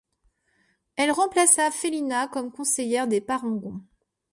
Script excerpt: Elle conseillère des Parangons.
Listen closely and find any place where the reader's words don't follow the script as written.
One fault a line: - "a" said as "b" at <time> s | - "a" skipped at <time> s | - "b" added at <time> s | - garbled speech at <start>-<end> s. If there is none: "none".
- "remplaça Félina comme" added at 1.1 s